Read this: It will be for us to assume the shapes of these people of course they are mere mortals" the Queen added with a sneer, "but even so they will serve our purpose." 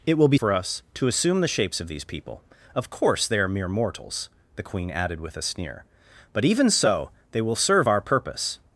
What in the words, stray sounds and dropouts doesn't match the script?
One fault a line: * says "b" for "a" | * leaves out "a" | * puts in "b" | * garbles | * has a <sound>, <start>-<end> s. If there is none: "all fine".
all fine